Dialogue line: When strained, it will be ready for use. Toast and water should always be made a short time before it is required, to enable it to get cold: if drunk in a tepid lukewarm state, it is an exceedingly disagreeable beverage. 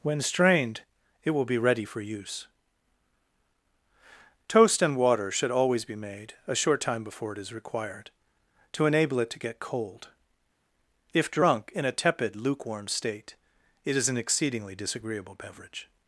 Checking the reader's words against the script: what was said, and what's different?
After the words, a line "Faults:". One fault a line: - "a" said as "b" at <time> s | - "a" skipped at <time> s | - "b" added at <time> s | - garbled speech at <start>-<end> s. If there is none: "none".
When strained, it will be ready for use. Toast and water should always be made a short time before it is required, to enable it to get cold: if drunk in a tepid lukewarm state, it is an exceedingly disagreeable beverage.
Faults:
none